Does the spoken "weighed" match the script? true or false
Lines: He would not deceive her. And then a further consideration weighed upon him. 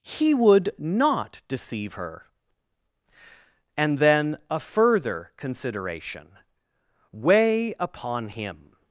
false